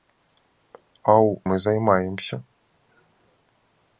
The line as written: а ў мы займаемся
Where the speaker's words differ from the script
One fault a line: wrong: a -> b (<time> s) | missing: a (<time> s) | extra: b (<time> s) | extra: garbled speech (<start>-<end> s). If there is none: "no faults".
no faults